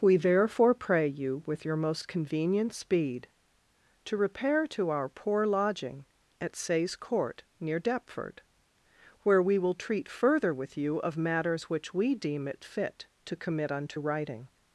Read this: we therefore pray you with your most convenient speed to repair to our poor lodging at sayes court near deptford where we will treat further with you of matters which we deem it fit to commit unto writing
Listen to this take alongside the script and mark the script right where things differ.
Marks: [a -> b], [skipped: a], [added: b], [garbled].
we therefore pray you with your most convenient speed to repair to our poor lodging at sayes court near deptford where we will treat further with you of matters which we deem it fit to commit unto writing